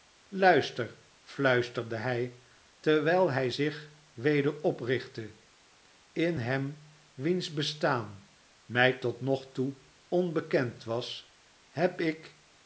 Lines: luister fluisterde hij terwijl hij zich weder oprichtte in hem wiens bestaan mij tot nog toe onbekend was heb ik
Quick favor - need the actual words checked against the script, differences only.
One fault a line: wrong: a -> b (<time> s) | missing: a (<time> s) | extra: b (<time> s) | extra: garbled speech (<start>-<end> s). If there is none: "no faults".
no faults